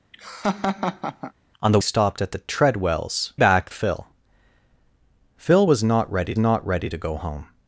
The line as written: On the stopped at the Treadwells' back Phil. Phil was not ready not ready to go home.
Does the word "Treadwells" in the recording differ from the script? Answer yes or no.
no